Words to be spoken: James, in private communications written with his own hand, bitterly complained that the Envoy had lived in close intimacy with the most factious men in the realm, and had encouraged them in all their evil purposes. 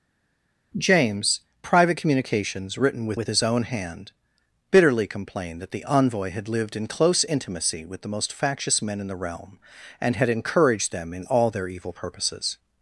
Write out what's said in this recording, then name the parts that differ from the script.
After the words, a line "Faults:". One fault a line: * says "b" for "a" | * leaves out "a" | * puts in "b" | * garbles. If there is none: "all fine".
James, private communications written with with his own hand, bitterly complained that the Envoy had lived in close intimacy with the most factious men in the realm, and had encouraged them in all their evil purposes.
Faults:
* leaves out "in"
* puts in "with"